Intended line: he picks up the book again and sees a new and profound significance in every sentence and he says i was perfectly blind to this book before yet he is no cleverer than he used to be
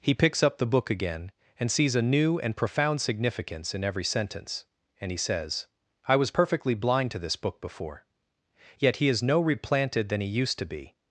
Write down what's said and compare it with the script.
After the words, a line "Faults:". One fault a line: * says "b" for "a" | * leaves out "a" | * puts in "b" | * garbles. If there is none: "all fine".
he picks up the book again and sees a new and profound significance in every sentence and he says i was perfectly blind to this book before yet he is no replanted than he used to be
Faults:
* says "replanted" for "cleverer"